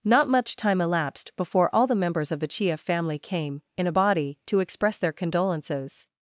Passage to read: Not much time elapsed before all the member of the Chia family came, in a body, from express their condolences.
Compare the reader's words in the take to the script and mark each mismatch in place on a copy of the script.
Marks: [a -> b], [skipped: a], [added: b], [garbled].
Not much time elapsed before all the [member -> members] of the Chia family came, in a body, [from -> to] express their condolences.